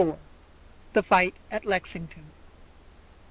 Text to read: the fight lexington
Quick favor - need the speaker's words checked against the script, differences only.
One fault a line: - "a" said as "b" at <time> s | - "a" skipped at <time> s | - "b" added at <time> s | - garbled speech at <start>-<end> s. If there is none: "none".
- "at" added at 1.5 s